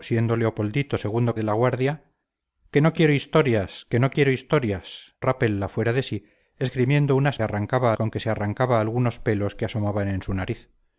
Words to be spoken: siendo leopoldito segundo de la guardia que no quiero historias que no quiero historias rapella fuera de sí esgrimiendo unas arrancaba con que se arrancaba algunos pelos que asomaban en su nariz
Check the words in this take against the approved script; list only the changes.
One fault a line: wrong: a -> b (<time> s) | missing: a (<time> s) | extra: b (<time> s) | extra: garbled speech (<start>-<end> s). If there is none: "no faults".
no faults